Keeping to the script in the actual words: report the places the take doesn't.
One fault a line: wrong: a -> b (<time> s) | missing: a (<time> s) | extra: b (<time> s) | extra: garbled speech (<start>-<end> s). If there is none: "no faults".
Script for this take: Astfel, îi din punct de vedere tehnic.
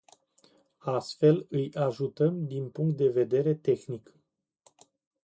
extra: ajutăm (1.7 s)